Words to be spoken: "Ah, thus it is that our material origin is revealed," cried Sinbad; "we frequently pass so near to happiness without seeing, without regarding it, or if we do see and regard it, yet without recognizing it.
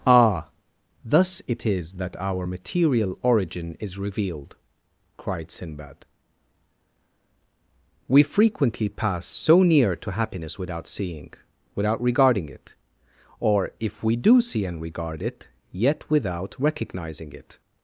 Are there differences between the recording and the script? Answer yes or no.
no